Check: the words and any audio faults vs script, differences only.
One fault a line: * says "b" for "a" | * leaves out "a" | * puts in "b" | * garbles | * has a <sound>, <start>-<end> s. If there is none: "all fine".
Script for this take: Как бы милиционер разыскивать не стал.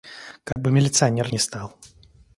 * has a dropout, 0.5-0.6 s
* leaves out "разыскивать"